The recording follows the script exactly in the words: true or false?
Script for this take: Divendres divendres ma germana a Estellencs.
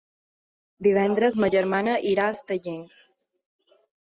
false